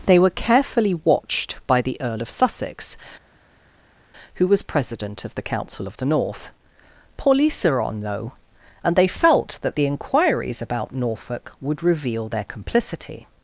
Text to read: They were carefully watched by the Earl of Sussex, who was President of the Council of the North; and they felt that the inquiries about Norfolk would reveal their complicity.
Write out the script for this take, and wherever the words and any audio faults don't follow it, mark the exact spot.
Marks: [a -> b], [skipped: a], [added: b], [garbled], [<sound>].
They were carefully watched by the Earl of Sussex, who was President of the Council of the North; [added: police are on though] and they felt that the inquiries about Norfolk would reveal their complicity.